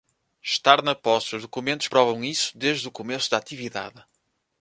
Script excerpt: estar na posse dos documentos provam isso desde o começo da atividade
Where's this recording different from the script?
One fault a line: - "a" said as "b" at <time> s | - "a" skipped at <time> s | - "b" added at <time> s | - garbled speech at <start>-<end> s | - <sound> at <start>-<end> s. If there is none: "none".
none